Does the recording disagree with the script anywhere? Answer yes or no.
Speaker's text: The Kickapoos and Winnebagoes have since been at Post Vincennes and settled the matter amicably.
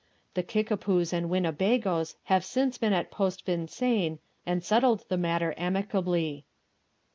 no